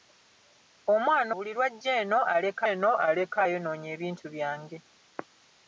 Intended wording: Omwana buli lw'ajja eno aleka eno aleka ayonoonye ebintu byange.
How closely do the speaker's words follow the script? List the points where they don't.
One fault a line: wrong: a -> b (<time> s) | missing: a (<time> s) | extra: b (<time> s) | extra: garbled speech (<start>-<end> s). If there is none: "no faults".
no faults